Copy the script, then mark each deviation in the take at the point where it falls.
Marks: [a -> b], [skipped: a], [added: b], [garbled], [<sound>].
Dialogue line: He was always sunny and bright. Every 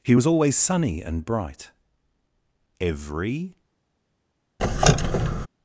He was always sunny and bright. Every [squeak]